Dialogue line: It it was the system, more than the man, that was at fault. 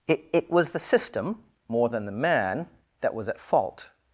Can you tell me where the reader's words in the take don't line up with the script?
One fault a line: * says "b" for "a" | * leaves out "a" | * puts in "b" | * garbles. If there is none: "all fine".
all fine